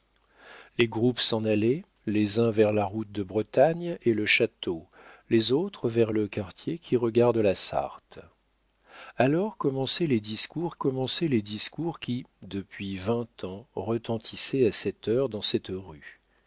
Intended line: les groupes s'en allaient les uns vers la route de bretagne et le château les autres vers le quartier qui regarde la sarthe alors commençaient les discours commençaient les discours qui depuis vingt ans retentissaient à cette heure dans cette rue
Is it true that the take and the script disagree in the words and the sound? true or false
false